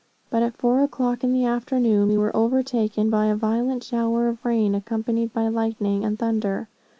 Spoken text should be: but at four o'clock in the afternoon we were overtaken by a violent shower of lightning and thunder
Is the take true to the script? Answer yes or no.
no